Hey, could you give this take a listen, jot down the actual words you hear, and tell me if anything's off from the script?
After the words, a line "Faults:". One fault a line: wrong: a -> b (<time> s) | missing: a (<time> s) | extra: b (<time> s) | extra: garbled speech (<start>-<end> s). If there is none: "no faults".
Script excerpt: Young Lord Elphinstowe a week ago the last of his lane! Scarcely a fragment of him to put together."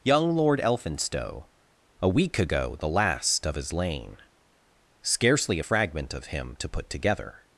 Young Lord Elphinstowe a week ago the last of his lane! Scarcely a fragment of him to put together."
Faults:
no faults